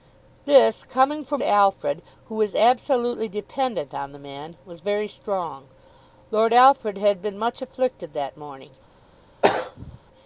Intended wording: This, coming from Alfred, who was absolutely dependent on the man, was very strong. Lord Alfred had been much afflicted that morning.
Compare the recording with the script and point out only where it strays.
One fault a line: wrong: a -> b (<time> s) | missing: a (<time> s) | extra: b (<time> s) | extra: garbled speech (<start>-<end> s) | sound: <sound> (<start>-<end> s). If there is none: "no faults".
sound: throat clearing (9.4-10.0 s)